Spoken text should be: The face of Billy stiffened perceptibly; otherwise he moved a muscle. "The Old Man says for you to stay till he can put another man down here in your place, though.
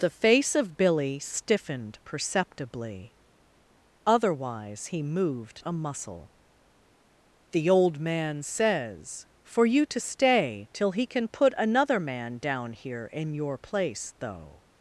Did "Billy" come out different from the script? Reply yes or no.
no